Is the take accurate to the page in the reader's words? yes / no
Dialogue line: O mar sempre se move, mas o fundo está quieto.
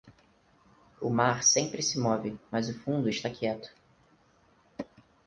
yes